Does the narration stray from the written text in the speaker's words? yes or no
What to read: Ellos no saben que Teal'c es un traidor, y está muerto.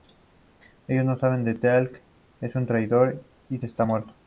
no